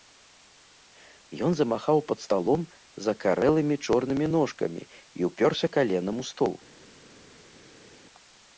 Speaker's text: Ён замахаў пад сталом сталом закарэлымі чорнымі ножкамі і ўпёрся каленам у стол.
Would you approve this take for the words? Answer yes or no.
no